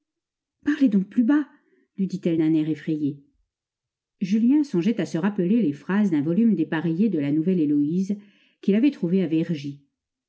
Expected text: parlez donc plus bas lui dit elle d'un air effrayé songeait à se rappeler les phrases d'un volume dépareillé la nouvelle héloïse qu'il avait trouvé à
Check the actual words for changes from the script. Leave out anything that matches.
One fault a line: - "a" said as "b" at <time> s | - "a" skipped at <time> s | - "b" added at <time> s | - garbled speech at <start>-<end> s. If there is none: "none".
- "julien" added at 4.2 s
- "de" added at 7.1 s